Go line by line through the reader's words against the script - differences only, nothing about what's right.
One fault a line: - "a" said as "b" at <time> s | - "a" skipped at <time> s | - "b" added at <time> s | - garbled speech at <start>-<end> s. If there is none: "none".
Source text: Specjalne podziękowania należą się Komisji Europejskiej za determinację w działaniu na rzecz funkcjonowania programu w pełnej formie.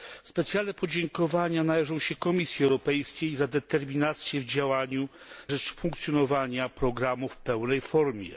- "na" skipped at 5.1 s